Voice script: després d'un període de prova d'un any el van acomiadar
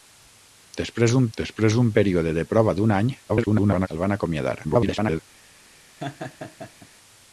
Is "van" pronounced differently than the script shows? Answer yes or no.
no